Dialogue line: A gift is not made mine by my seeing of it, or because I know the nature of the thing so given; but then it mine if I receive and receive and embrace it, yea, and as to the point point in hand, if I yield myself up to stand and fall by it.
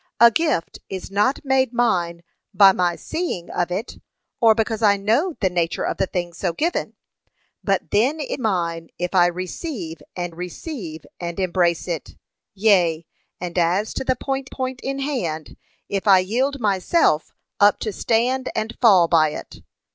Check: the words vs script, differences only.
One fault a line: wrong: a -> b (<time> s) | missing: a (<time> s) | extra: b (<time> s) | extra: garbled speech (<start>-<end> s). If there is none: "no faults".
no faults